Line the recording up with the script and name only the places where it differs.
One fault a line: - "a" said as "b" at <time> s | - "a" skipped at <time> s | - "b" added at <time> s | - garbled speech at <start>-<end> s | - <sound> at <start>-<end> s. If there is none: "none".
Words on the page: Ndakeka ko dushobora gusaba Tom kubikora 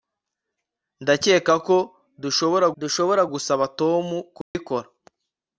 - "dushobora" added at 2.8 s
- dropout at 4.4-4.5 s